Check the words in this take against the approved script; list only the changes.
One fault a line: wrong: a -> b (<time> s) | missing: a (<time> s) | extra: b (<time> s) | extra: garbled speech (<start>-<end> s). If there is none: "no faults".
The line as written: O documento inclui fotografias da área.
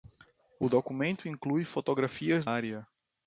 missing: da (2.5 s)